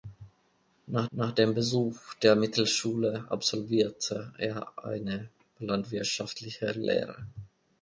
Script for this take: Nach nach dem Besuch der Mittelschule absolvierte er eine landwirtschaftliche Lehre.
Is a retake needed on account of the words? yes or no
no